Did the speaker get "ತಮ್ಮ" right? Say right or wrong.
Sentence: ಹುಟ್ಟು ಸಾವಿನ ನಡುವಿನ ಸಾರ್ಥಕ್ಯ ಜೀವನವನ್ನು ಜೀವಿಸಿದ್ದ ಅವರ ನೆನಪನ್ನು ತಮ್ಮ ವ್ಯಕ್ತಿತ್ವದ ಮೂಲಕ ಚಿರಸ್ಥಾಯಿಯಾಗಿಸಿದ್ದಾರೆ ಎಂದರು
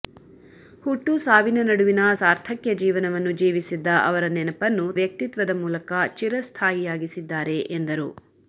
wrong